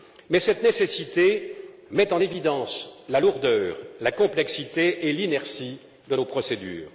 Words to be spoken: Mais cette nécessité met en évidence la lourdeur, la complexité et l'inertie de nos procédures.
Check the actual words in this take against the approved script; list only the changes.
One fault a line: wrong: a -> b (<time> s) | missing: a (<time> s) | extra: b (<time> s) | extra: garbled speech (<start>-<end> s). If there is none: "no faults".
no faults